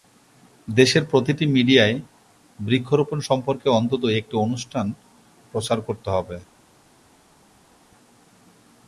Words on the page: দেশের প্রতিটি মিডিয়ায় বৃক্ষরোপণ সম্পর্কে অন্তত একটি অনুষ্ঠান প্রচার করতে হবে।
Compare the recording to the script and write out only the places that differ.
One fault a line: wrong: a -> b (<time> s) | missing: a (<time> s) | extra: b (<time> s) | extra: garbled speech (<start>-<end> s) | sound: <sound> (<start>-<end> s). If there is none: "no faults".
no faults